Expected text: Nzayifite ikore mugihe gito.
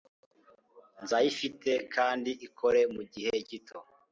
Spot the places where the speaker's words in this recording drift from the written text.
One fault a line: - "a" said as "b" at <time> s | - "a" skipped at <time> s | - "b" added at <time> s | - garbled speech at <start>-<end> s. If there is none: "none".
- "kandi" added at 1.9 s